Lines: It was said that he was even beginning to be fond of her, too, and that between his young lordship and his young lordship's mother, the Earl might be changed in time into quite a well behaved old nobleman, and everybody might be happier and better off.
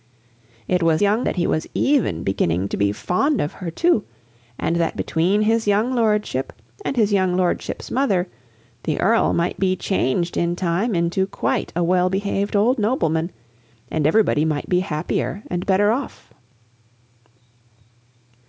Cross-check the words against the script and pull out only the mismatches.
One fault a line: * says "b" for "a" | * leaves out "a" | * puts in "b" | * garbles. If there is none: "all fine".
* says "young" for "said"